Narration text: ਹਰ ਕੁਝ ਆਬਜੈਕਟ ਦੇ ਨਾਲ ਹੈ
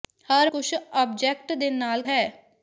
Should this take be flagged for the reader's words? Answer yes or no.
no